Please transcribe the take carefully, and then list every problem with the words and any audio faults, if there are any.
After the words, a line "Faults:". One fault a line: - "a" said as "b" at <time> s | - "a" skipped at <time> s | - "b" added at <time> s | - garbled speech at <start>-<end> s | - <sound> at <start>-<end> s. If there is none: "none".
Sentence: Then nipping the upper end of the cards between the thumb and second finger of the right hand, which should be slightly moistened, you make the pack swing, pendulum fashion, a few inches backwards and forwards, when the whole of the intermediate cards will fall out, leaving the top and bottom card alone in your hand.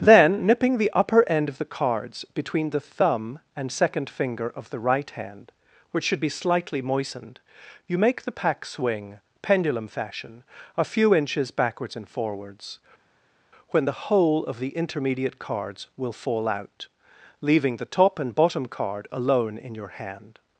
Then nipping the upper end of the cards between the thumb and second finger of the right hand, which should be slightly moistened, you make the pack swing, pendulum fashion, a few inches backwards and forwards, when the whole of the intermediate cards will fall out, leaving the top and bottom card alone in your hand.
Faults:
none